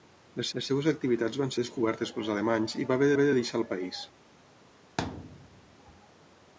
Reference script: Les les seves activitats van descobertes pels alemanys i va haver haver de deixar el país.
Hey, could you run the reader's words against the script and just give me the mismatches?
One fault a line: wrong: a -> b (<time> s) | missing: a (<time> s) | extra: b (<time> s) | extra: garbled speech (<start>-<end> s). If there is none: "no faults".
no faults